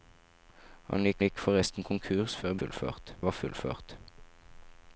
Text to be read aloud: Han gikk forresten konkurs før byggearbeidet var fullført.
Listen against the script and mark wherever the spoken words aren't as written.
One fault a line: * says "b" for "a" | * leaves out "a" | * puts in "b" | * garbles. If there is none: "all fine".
* puts in "gikk"
* says "fullført" for "byggearbeidet"